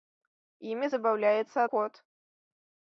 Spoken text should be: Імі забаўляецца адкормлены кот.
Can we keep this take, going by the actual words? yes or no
no